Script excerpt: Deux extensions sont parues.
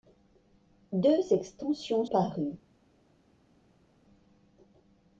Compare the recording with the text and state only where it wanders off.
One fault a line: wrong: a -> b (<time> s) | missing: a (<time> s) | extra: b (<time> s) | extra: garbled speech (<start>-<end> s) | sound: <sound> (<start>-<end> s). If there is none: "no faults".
missing: sont (2.0 s)